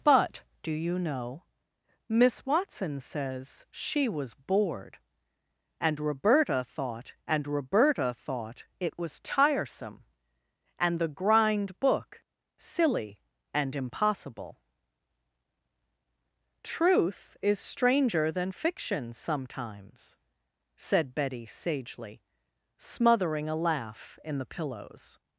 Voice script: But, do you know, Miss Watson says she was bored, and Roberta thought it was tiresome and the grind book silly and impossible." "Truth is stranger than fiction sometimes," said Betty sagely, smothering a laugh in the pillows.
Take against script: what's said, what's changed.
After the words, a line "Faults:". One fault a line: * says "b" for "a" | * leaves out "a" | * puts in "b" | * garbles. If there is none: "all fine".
But, do you know, Miss Watson says she was bored, and Roberta thought and Roberta thought it was tiresome and the grind book silly and impossible." "Truth is stranger than fiction sometimes," said Betty sagely, smothering a laugh in the pillows.
Faults:
* puts in "and Roberta thought"